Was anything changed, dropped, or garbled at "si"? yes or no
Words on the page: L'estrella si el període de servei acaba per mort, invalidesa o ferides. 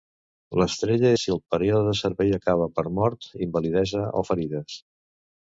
no